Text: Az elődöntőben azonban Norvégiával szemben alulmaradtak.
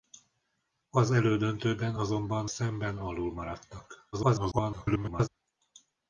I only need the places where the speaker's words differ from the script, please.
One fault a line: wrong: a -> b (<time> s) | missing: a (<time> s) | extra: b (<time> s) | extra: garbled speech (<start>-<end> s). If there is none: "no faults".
missing: Norvégiával (2.5 s)
extra: garbled speech (4.1-5.3 s)